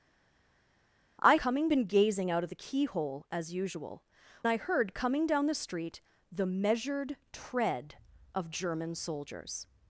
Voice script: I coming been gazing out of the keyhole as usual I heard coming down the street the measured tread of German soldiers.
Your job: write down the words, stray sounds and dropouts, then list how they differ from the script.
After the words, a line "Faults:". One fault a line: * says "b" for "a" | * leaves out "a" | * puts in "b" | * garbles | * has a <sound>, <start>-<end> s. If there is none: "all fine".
I coming been gazing out of the keyhole as usual I heard coming down the street the measured tread of German soldiers.
Faults:
all fine